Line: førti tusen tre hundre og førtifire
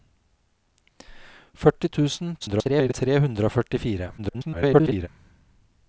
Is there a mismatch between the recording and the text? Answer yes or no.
yes